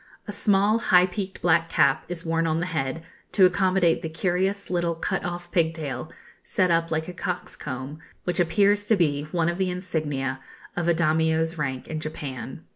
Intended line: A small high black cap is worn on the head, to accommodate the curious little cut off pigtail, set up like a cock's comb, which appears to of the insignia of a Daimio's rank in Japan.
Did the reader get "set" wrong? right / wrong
right